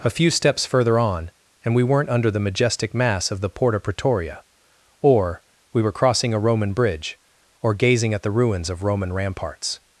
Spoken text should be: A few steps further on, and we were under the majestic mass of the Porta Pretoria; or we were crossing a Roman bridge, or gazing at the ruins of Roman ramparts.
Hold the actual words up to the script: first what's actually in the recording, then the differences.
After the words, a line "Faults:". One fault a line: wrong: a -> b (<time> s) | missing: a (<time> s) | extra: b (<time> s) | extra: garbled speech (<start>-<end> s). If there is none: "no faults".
A few steps further on, and we weren't under the majestic mass of the Porta Pretoria; or we were crossing a Roman bridge, or gazing at the ruins of Roman ramparts.
Faults:
wrong: were -> weren't (1.8 s)